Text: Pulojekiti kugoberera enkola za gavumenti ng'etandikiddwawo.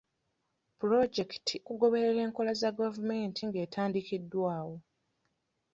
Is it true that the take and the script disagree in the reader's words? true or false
false